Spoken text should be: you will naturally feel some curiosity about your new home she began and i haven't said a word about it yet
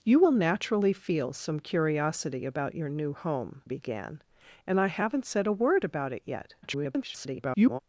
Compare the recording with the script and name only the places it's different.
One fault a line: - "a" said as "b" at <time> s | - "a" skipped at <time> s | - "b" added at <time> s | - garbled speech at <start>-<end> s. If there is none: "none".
- "she" skipped at 3.6 s
- garbled speech at 6.6-7.8 s